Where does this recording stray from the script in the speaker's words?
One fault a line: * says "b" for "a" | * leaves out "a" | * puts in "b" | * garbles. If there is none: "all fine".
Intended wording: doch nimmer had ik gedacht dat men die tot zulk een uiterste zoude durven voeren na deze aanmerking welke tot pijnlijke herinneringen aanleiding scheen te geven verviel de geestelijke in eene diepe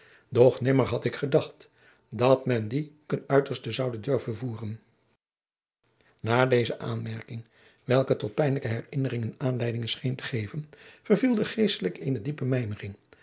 * leaves out "tot zulk"
* leaves out "in"